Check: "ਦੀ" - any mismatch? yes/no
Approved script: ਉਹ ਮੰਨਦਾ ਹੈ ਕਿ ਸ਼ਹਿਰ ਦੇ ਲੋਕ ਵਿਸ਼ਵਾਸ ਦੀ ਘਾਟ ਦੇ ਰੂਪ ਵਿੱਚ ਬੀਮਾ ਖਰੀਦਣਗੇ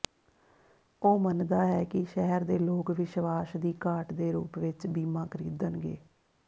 no